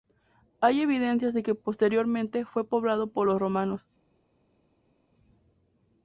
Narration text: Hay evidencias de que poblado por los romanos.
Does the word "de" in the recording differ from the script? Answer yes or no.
no